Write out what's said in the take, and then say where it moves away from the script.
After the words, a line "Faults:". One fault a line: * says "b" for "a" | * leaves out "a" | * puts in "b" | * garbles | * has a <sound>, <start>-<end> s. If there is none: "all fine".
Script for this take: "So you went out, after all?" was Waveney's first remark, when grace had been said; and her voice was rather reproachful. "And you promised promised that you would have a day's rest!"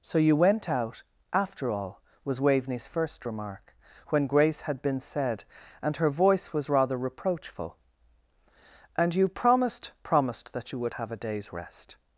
"So you went out, after all?" was Waveney's first remark, when grace had been said; and her voice was rather reproachful. "And you promised promised that you would have a day's rest!"
Faults:
all fine